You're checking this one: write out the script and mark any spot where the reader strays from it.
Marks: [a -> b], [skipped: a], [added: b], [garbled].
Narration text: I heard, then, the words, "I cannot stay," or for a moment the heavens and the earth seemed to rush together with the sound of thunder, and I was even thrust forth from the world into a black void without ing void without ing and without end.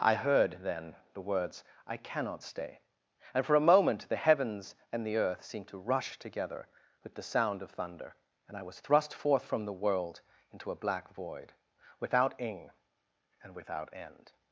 I heard, then, the words, "I cannot stay," [or -> and] for a moment the heavens and the earth seemed to rush together with the sound of thunder, and I was [skipped: even] thrust forth from the world into a black void without ing [skipped: void without ing] and without end.